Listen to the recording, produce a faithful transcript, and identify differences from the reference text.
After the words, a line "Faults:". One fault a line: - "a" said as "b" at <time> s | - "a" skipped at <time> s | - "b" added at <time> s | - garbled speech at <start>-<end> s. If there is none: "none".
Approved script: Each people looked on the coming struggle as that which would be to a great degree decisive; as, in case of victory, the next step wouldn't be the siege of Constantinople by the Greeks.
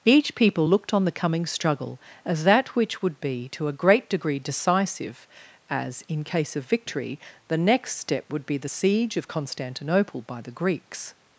Each people looked on the coming struggle as that which would be to a great degree decisive; as, in case of victory, the next step would be the siege of Constantinople by the Greeks.
Faults:
- "wouldn't" said as "would" at 8.3 s